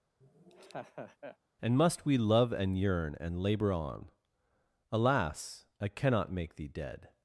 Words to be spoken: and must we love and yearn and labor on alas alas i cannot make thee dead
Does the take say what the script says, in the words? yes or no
no